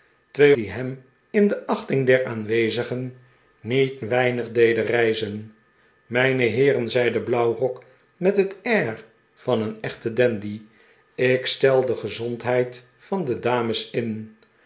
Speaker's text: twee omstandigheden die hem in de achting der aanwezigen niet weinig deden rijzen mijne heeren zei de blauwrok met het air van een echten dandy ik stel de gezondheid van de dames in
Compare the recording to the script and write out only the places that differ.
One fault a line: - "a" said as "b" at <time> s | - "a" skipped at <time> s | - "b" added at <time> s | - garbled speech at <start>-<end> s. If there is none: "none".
- "omstandigheden" skipped at 0.6 s